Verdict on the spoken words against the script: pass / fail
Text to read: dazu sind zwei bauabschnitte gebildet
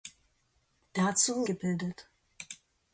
fail